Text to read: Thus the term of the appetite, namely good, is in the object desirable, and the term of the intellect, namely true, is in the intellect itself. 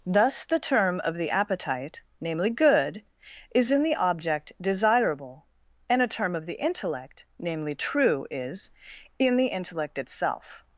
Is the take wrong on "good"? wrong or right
right